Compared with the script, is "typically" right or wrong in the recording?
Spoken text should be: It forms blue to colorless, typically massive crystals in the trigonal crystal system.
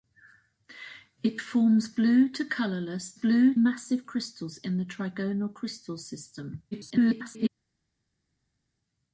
wrong